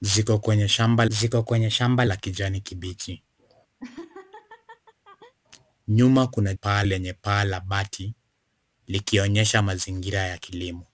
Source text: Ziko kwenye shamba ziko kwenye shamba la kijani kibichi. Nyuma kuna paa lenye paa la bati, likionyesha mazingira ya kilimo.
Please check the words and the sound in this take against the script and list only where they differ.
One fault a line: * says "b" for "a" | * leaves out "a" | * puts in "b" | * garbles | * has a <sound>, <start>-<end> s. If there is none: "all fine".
* has a laugh, 3.8-5.3 s